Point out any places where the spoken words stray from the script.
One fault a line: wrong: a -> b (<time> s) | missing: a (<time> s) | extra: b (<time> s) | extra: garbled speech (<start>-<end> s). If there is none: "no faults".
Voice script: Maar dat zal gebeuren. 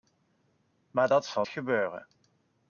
no faults